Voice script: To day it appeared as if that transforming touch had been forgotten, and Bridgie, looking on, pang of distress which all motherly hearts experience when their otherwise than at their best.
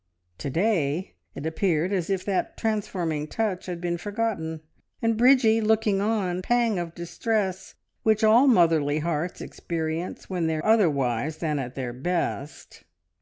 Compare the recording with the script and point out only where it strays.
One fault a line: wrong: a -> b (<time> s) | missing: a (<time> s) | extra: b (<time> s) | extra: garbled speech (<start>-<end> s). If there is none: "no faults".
no faults